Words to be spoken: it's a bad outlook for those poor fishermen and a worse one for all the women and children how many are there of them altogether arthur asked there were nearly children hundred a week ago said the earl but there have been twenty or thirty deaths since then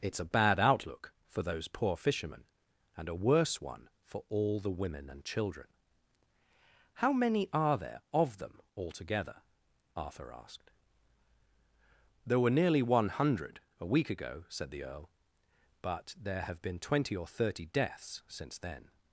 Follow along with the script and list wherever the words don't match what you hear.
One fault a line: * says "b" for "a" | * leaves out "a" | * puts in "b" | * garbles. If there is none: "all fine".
* says "one" for "children"